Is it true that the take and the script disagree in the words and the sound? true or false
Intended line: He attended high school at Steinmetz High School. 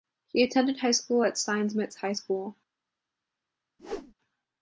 true